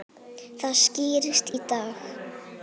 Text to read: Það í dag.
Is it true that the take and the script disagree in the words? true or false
true